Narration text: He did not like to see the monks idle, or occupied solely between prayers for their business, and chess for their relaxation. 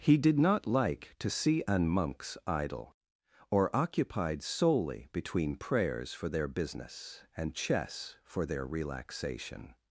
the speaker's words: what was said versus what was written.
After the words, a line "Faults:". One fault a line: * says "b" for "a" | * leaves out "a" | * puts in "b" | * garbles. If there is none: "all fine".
He did not like to see an monks idle, or occupied solely between prayers for their business, and chess for their relaxation.
Faults:
* says "an" for "the"